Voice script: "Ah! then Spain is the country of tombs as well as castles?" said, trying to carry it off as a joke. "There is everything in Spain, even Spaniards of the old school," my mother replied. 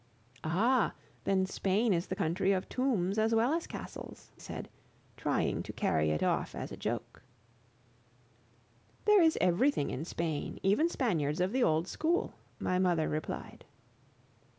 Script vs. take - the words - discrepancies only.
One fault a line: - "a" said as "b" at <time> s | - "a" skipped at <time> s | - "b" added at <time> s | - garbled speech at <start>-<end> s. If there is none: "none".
none